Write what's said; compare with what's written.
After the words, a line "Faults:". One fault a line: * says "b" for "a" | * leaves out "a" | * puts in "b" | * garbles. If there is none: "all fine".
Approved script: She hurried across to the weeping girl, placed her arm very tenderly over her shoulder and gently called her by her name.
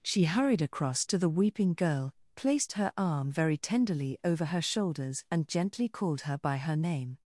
She hurried across to the weeping girl, placed her arm very tenderly over her shoulders and gently called her by her name.
Faults:
* says "shoulders" for "shoulder"